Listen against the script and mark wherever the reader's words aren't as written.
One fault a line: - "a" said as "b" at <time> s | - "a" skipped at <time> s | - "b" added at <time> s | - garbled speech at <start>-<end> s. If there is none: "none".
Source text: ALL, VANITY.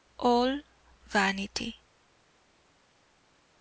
none